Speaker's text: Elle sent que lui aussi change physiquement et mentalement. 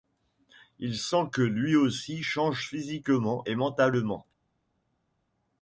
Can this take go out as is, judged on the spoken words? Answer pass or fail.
fail